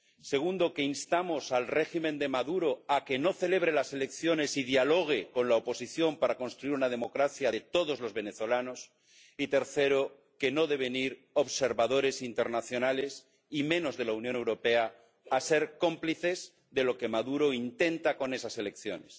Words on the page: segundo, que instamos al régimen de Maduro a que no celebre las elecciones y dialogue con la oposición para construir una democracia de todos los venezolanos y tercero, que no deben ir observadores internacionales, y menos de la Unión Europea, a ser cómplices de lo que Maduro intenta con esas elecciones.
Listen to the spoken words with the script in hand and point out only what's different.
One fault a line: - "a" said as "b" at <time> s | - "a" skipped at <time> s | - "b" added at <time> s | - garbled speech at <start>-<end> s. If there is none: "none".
none